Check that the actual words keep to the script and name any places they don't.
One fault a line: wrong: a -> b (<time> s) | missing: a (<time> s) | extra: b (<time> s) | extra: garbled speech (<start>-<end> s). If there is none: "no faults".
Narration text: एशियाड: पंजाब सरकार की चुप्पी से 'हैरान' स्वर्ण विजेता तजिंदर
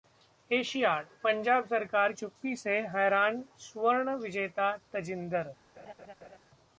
missing: की (2.1 s)